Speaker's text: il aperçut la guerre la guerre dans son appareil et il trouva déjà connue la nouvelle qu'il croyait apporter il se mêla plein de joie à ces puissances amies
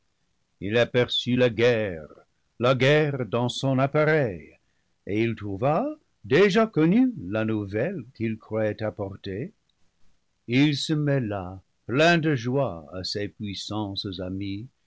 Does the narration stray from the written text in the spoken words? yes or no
no